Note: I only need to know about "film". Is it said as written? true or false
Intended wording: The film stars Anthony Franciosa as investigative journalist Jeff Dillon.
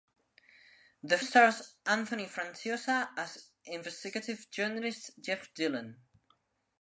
false